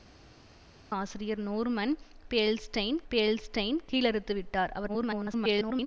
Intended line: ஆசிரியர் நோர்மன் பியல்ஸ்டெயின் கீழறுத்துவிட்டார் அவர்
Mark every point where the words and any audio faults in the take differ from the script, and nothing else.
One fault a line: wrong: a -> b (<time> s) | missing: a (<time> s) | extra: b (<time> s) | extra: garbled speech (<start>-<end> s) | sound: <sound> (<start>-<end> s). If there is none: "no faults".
extra: பியல்ஸ்டெயின் (3.1 s)
extra: garbled speech (4.9-5.9 s)